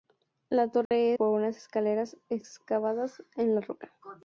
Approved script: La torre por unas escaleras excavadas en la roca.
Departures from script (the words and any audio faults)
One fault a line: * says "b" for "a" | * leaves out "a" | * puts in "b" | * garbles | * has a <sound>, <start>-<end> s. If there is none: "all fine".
* has a dropout, 0.9-0.9 s